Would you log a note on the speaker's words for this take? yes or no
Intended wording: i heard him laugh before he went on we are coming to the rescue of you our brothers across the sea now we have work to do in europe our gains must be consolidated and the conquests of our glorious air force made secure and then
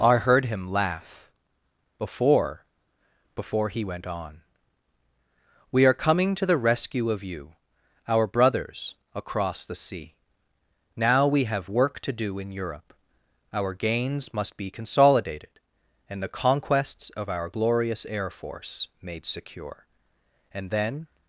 yes